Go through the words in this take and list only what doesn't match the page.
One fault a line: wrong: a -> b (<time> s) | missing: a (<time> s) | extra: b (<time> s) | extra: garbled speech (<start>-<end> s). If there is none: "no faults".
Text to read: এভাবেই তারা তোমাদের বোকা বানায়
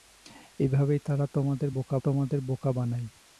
extra: তোমাদের বোকা (2.0 s)